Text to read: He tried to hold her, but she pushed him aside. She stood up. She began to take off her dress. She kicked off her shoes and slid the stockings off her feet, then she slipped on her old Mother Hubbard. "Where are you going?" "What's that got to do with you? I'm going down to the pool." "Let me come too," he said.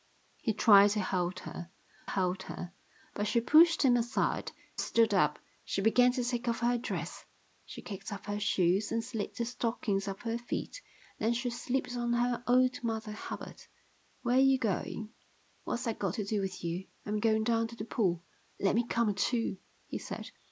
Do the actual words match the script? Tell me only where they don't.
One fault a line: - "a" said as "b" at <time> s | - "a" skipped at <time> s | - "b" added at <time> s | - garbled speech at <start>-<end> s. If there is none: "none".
- "hold her" added at 2.1 s
- "She" skipped at 4.5 s